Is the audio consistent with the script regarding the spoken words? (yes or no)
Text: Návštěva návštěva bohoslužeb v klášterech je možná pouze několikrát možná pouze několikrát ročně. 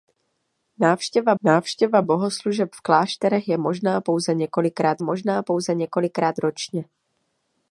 yes